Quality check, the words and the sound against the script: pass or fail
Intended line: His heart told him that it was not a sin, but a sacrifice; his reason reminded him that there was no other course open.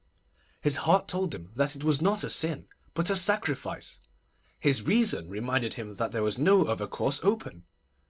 pass